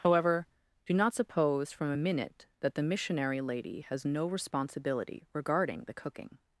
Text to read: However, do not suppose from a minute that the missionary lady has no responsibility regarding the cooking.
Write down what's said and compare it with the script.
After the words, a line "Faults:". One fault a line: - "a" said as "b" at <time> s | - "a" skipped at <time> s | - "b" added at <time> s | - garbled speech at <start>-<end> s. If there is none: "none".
However, do not suppose from a minute that the missionary lady has no responsibility regarding the cooking.
Faults:
none